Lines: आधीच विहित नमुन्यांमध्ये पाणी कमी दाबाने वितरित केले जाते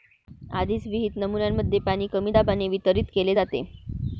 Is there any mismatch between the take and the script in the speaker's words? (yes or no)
no